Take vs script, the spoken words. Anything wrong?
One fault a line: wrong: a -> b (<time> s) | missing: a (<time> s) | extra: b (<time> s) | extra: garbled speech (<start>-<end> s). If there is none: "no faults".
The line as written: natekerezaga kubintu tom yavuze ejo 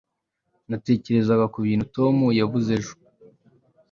no faults